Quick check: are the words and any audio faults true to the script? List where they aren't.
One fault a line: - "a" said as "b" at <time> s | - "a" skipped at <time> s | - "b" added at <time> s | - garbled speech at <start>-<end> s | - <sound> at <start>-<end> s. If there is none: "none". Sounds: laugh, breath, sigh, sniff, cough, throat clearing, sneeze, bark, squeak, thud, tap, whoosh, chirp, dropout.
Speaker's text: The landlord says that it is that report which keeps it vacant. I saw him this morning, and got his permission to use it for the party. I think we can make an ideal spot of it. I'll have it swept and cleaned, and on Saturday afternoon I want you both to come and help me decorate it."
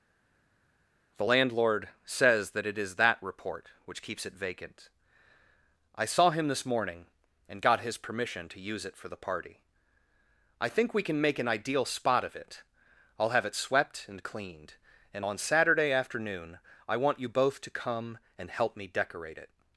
none